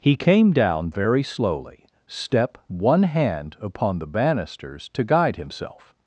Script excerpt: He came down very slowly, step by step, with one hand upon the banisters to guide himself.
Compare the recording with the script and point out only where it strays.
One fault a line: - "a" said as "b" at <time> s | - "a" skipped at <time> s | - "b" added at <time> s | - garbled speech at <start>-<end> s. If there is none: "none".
- "by step with" skipped at 2.6 s